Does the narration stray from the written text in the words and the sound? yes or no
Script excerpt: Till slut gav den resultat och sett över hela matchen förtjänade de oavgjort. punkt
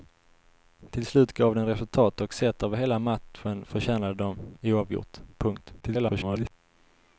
yes